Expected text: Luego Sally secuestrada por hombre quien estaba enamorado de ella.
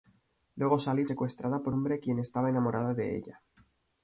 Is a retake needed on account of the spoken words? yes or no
no